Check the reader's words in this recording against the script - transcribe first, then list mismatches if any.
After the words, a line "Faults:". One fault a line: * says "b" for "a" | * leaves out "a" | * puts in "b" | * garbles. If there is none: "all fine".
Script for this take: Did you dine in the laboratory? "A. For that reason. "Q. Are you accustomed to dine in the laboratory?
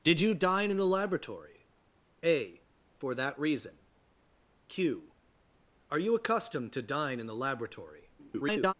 Did you dine in the laboratory? "A. For that reason. "Q. Are you accustomed to dine in the laboratory? [garbled]
Faults:
* garbles